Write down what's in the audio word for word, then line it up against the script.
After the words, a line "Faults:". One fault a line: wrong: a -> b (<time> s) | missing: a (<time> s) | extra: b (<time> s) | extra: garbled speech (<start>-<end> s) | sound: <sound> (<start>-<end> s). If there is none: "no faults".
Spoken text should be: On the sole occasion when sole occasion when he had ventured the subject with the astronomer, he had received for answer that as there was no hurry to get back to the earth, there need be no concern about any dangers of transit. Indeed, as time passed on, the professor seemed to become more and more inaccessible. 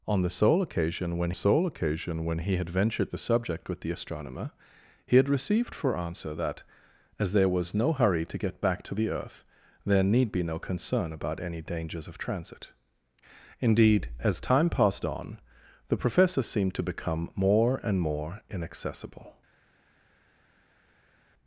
On the sole occasion when sole occasion when he had ventured the subject with the astronomer, he had received for answer that as there was no hurry to get back to the earth, there need be no concern about any dangers of transit. Indeed, as time passed on, the professor seemed to become more and more inaccessible.
Faults:
no faults